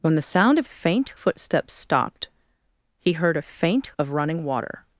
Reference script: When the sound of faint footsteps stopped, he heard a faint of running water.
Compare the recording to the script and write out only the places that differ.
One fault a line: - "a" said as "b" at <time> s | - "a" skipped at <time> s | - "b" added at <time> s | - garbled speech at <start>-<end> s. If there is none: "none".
none